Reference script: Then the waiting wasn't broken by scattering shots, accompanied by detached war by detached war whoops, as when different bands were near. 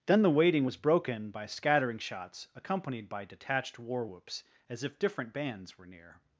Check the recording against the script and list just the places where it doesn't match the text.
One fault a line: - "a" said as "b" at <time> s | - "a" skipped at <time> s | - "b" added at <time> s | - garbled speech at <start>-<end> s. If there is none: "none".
- "wasn't" said as "was" at 0.6 s
- "by detached war" skipped at 4.1 s
- "when" said as "if" at 4.8 s